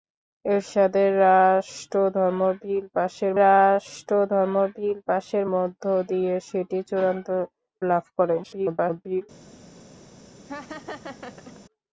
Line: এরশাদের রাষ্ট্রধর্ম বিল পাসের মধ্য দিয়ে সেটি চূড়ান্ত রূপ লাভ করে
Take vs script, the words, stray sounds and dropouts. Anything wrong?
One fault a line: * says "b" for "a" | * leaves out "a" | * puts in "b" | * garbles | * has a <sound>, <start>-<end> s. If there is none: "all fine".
* puts in "রাষ্ট্রধর্ম বিল পাসের"
* leaves out "রূপ"
* garbles
* has a laugh, 10.5-11.6 s